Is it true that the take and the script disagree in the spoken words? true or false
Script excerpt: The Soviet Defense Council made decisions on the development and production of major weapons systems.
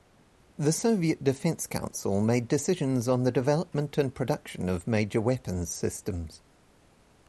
false